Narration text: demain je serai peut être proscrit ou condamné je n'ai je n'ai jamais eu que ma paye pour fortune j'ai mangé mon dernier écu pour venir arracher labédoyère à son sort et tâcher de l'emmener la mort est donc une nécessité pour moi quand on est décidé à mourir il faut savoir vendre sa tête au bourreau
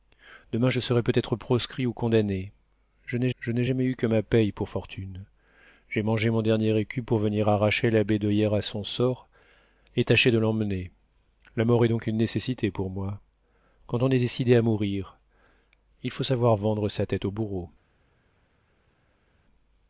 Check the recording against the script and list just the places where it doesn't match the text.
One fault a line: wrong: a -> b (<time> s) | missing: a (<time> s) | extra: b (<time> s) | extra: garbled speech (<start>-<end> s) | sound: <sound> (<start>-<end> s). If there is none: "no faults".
no faults